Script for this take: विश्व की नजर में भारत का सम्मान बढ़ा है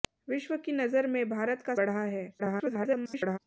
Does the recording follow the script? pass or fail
fail